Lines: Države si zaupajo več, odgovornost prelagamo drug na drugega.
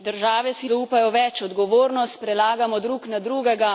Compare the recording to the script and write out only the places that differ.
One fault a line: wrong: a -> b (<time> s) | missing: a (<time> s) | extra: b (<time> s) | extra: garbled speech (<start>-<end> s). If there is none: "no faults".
no faults